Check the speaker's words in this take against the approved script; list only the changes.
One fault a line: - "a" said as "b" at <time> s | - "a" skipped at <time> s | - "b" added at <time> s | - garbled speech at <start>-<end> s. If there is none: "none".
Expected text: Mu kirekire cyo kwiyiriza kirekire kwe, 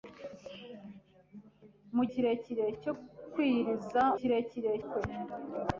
none